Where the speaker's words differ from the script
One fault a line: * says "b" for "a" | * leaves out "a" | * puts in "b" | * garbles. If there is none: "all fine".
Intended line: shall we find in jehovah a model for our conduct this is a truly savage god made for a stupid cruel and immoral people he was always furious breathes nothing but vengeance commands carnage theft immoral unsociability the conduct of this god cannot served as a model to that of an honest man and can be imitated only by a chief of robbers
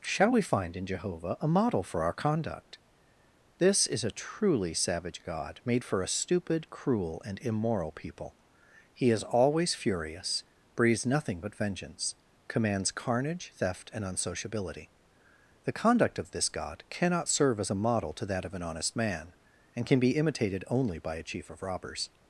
* says "is" for "was"
* says "and" for "immoral"
* says "serve" for "served"